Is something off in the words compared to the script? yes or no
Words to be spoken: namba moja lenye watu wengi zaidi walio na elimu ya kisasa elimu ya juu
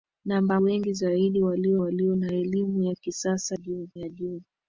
yes